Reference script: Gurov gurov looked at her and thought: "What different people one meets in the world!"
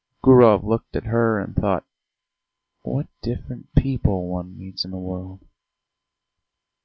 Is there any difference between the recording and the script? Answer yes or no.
yes